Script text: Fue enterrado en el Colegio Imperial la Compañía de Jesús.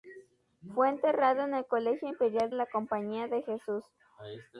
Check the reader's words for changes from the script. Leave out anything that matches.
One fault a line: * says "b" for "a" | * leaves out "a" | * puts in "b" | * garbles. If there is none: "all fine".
all fine